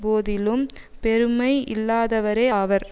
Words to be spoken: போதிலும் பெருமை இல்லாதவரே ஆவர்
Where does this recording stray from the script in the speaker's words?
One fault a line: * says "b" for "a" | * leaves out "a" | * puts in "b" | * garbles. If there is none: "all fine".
all fine